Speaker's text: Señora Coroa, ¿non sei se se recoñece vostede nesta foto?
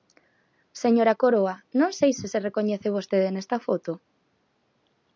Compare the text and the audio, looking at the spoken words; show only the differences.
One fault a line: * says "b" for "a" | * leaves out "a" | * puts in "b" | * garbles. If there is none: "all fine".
all fine